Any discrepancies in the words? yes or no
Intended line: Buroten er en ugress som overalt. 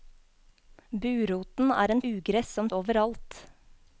no